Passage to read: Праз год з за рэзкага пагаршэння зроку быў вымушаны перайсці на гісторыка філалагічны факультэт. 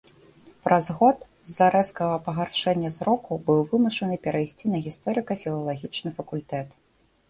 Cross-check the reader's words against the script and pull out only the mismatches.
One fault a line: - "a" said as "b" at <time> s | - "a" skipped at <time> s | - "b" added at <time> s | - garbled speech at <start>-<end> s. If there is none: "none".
none